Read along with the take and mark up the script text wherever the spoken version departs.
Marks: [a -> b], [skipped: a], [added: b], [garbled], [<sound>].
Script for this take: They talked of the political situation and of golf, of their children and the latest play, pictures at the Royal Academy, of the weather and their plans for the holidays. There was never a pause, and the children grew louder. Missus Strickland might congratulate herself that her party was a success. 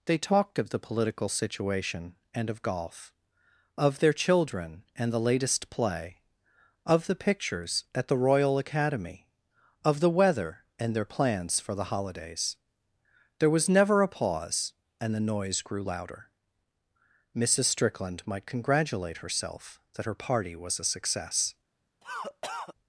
They talked of the political situation and of golf, of their children and the latest play, [added: of the] pictures at the Royal Academy, of the weather and their plans for the holidays. There was never a pause, and the [children -> noise] grew louder. Missus Strickland might congratulate herself that her party was a success. [cough]